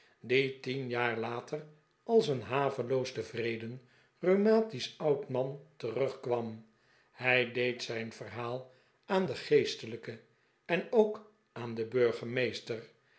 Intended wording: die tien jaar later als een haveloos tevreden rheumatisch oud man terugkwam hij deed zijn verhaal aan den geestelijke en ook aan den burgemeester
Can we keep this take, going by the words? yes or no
yes